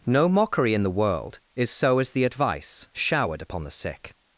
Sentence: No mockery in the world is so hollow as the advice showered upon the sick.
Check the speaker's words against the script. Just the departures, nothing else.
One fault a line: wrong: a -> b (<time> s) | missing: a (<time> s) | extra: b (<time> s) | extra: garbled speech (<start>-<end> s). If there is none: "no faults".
missing: hollow (2.0 s)